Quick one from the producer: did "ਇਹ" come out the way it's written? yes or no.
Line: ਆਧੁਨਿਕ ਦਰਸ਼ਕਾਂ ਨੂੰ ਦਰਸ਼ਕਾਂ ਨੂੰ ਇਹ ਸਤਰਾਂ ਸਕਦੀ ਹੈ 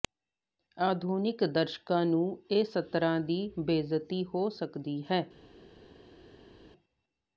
no